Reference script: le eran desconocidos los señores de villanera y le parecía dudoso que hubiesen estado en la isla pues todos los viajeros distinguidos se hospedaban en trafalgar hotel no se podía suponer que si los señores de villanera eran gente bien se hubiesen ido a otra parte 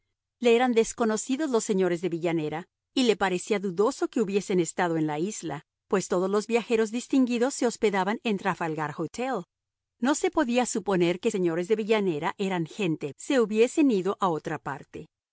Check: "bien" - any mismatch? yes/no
yes